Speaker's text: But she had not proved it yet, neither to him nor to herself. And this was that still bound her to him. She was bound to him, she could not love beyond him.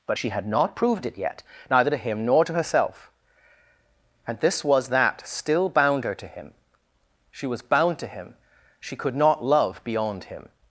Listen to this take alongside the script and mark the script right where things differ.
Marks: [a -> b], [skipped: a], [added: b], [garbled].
But she had not proved it yet, neither to him nor to herself. And this was that still bound her to him. She was bound to him, she could not love beyond him.